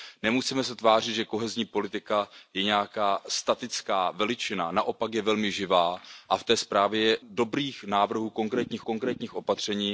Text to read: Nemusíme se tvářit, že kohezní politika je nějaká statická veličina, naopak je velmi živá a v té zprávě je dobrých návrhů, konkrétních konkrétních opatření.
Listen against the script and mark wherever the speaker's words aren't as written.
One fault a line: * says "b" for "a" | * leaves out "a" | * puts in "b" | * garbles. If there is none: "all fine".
all fine